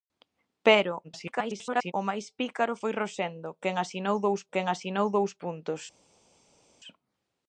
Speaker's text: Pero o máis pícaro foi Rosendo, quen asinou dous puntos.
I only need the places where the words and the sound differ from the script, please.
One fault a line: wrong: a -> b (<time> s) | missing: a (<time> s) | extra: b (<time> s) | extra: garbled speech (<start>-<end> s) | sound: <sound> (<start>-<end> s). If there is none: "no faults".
extra: garbled speech (1.0-1.9 s)
extra: quen asinou dous (4.5 s)